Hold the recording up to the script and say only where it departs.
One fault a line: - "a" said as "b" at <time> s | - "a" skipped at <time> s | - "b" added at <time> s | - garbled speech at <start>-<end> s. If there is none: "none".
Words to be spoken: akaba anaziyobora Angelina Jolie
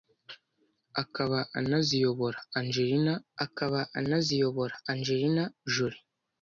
- "akaba anaziyobora Angelina" added at 3.4 s